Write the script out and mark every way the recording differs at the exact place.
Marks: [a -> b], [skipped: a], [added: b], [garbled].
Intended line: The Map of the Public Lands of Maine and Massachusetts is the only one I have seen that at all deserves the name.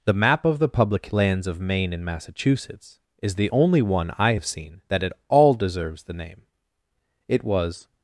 The Map of the Public Lands of Maine and Massachusetts is the only one I have seen that at all deserves the name. [added: It was]